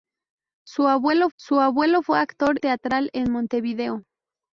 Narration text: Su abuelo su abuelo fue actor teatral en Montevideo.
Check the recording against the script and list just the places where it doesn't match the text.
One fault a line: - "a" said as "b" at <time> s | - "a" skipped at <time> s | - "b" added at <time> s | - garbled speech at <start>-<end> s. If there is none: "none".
none